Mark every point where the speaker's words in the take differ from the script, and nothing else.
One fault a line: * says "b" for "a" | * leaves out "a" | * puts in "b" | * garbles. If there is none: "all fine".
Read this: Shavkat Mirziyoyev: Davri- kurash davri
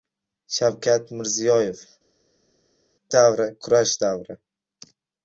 all fine